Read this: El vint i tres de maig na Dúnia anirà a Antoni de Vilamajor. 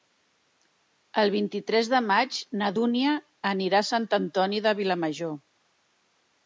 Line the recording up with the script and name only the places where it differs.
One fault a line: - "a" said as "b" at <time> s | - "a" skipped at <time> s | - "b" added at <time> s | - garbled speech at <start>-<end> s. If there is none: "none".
- "Sant" added at 3.9 s